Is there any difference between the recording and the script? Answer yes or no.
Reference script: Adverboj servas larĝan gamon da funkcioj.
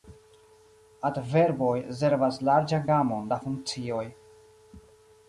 no